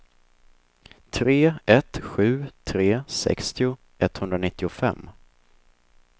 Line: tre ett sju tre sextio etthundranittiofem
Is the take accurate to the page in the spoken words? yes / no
yes